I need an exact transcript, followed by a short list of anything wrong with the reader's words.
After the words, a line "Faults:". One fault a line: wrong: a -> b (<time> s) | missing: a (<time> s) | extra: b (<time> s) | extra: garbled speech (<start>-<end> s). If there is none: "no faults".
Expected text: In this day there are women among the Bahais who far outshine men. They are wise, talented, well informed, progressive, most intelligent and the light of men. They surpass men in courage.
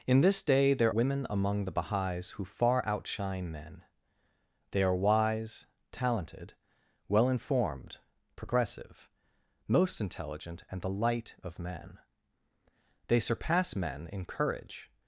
In this day there women among the Bahais who far outshine men. They are wise, talented, well informed, progressive, most intelligent and the light of men. They surpass men in courage.
Faults:
missing: are (0.9 s)